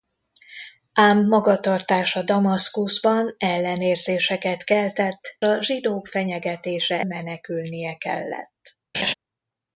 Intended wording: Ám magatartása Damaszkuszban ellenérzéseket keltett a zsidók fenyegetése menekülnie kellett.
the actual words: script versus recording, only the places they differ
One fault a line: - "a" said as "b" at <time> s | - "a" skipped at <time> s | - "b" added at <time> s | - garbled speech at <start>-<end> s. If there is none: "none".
none